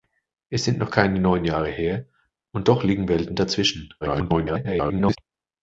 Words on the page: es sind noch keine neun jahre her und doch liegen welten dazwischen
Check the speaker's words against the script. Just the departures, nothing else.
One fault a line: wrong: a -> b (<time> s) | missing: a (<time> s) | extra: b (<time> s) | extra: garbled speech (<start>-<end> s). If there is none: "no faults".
extra: garbled speech (4.0-5.2 s)